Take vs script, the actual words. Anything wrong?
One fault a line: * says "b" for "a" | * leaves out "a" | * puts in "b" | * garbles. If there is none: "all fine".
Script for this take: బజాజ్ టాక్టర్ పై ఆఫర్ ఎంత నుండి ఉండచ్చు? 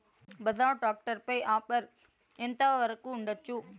* says "వరకు" for "నుండి"